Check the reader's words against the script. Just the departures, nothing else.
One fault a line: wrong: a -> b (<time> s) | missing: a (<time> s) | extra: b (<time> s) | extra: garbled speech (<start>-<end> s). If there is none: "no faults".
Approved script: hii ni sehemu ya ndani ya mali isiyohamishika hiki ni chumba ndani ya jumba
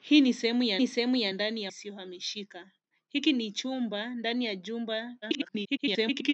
extra: ni sehemu ya (0.8 s)
missing: mali (1.7 s)
extra: garbled speech (5.2-6.3 s)